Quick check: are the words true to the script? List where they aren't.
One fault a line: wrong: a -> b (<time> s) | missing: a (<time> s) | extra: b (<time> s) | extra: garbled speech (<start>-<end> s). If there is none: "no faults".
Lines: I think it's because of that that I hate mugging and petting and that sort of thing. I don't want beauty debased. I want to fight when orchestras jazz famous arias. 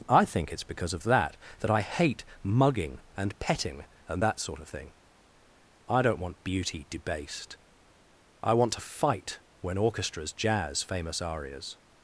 no faults